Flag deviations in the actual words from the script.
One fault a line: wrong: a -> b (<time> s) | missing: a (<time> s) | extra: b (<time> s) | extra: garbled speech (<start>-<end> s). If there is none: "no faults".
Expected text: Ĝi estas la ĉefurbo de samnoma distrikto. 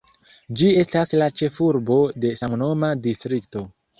no faults